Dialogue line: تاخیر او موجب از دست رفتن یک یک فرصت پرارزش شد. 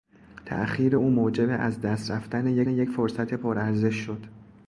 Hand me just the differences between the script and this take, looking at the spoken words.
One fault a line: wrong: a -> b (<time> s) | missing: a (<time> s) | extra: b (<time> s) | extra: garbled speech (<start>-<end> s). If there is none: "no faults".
no faults